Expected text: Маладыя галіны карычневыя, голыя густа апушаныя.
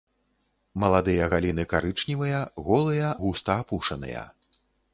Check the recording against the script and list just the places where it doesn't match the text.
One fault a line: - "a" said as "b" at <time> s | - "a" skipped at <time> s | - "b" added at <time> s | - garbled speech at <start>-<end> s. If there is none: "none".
none